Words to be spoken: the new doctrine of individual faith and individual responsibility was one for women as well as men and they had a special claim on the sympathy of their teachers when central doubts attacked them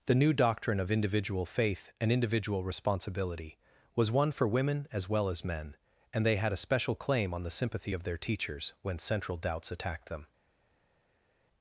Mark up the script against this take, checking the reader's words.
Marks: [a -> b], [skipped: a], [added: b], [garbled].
the new doctrine of individual faith and individual responsibility was one for women as well as men and they had a special claim on the sympathy of their teachers when central doubts attacked them